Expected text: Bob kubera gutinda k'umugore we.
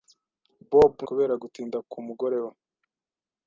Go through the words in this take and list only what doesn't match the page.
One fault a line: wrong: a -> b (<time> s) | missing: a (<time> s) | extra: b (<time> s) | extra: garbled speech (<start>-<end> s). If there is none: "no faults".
no faults